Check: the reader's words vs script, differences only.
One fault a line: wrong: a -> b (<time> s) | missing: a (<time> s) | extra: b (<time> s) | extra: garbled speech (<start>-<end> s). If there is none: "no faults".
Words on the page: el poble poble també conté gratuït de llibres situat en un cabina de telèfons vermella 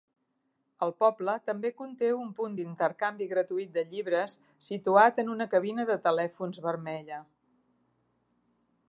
missing: poble (1.4 s)
extra: un punt d'intercanvi (2.2 s)
wrong: un -> una (5.3 s)